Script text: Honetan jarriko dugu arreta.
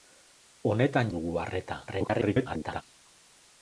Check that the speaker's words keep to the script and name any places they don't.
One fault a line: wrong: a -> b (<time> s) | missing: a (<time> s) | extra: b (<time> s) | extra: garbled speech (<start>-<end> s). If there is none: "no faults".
missing: jarriko (1.1 s)
extra: garbled speech (1.9-2.8 s)